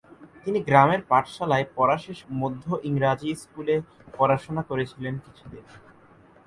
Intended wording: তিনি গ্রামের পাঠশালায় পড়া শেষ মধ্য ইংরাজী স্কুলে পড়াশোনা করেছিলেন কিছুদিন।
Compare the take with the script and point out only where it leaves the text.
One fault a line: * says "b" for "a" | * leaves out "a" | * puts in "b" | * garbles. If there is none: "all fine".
all fine